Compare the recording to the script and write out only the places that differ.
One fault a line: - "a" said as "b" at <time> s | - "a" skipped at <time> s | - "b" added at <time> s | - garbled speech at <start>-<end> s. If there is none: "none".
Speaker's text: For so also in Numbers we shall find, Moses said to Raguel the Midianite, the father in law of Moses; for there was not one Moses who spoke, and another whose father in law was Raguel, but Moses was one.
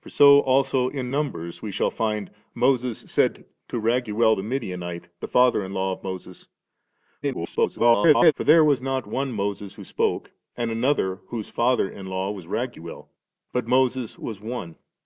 - garbled speech at 7.2-8.3 s